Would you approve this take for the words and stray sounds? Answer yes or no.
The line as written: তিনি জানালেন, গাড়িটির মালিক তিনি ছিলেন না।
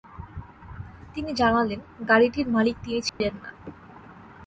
no